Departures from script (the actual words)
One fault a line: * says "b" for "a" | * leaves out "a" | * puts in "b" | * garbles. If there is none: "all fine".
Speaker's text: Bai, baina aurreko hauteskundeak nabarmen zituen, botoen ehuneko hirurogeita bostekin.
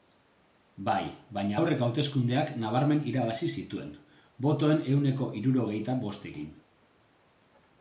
* puts in "irabazi"